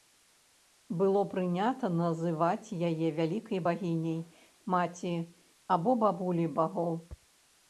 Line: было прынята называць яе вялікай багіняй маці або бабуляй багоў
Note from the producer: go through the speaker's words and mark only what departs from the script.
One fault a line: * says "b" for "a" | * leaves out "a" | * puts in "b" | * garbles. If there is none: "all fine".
all fine